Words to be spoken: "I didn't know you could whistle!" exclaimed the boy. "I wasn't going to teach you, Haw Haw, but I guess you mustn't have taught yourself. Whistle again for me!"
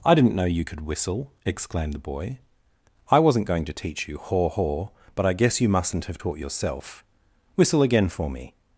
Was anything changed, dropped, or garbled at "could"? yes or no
no